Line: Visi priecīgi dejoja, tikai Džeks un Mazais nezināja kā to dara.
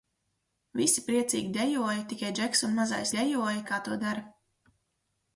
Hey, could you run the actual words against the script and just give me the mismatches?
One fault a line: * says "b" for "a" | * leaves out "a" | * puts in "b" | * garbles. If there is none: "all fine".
* says "dejoja" for "nezināja"